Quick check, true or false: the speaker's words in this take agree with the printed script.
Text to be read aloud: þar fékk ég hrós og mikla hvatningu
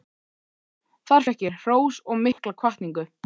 true